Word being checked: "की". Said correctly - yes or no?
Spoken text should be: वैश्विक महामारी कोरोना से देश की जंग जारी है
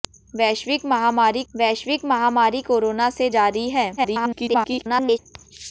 no